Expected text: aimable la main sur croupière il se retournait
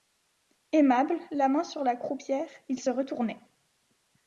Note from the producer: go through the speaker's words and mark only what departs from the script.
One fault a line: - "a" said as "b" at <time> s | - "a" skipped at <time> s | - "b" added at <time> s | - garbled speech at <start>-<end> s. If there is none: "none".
- "la" added at 1.8 s